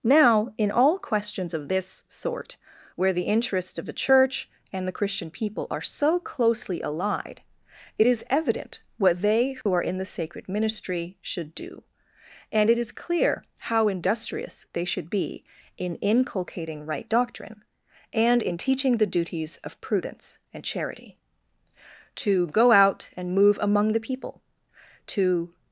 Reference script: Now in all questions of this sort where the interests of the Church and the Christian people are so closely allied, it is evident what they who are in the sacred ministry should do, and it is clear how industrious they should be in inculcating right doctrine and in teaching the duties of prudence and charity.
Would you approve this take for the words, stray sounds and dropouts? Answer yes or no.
no